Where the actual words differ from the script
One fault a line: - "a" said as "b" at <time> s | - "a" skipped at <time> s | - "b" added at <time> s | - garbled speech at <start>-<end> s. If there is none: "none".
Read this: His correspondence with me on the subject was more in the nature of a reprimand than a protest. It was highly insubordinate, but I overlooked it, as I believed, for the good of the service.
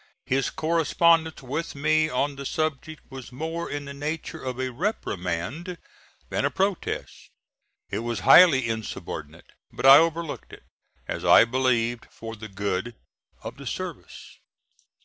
none